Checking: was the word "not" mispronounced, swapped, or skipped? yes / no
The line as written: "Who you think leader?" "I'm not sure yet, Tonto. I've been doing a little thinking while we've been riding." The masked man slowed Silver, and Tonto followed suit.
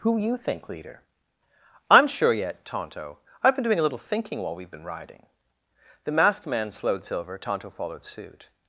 yes